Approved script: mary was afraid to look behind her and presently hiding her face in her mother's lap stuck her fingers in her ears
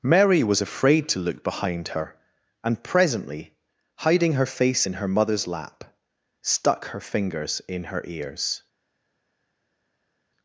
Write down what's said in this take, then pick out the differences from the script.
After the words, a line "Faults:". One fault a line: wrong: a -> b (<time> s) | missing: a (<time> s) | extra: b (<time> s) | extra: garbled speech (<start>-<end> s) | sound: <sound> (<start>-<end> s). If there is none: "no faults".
mary was afraid to look behind her and presently hiding her face in her mother's lap stuck her fingers in her ears
Faults:
no faults